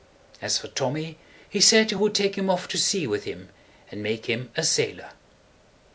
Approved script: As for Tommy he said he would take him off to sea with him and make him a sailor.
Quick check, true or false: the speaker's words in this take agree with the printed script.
true